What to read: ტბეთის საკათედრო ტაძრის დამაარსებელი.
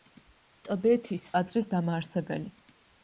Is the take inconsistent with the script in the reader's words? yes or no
yes